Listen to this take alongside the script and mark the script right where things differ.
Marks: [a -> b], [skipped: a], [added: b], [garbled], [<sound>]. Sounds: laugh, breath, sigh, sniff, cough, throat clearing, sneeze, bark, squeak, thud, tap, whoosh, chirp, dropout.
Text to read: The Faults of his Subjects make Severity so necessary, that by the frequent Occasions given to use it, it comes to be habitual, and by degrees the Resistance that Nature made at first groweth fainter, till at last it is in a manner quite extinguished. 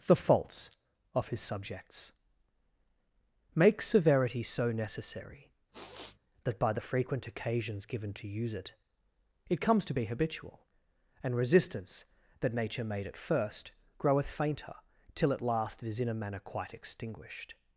The Faults of his Subjects make Severity so necessary, [sniff] that by the frequent Occasions given to use it, it comes to be habitual, and [skipped: by degrees the] Resistance that Nature made at first groweth fainter, till at last it is in a manner quite extinguished.